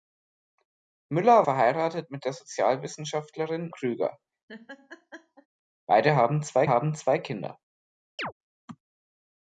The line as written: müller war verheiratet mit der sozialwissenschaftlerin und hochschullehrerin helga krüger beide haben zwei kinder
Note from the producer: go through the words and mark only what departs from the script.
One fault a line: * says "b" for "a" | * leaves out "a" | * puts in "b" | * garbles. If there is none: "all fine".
* leaves out "war"
* says "krüger beide haben zwei" for "und hochschullehrerin helga krüger beide"